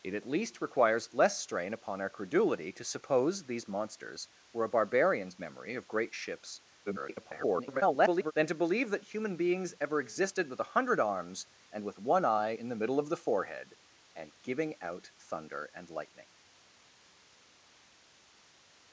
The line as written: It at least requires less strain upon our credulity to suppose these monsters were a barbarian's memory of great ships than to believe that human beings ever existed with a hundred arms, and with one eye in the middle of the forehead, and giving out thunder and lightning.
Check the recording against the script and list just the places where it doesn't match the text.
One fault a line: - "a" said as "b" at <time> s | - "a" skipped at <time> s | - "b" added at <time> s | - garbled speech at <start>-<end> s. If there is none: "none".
- garbled speech at 6.9-8.3 s